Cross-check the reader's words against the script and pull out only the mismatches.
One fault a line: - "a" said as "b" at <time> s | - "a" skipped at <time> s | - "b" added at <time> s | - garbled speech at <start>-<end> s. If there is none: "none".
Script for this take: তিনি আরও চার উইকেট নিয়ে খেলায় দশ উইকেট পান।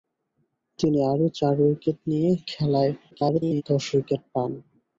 - garbled speech at 3.1-3.6 s